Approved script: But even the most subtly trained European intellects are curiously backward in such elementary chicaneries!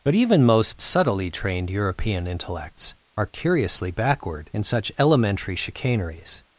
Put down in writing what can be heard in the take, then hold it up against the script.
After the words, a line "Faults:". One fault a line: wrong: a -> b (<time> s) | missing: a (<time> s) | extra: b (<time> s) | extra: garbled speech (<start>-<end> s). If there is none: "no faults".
But even most subtly trained European intellects are curiously backward in such elementary chicaneries!
Faults:
missing: the (0.4 s)